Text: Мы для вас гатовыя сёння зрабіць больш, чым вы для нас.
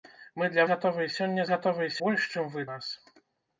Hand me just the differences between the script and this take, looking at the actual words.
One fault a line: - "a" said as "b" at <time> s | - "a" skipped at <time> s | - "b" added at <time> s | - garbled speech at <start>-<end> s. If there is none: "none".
- "вас" skipped at 0.6 s
- "зрабіць" said as "гатовыя" at 1.5 s
- "для" skipped at 2.6 s